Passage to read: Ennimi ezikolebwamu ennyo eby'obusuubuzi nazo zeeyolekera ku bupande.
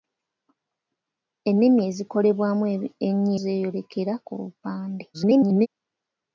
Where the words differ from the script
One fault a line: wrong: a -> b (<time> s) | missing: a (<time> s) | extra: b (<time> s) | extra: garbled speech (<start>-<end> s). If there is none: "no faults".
missing: eby'obusuubuzi nazo (3.3 s)
extra: garbled speech (5.1-5.7 s)